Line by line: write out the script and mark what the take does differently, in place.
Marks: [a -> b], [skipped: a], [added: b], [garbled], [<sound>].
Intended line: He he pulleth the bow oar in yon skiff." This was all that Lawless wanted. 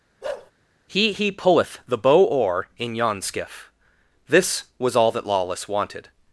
[bark] He he pulleth the bow oar in yon skiff." This was all that Lawless wanted.